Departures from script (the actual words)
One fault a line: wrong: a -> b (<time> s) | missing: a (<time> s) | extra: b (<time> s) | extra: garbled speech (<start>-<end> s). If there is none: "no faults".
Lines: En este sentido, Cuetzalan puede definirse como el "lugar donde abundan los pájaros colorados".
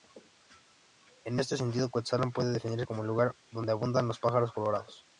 no faults